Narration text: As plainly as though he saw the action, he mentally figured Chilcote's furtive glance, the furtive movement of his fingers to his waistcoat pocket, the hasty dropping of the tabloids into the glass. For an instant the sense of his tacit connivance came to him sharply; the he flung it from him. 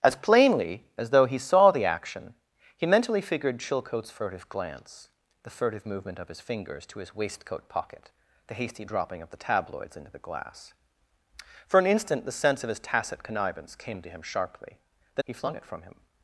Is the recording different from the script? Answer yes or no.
no